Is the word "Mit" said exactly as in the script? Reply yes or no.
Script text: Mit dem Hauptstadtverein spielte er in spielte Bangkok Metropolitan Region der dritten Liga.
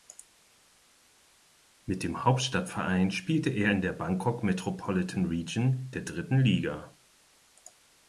yes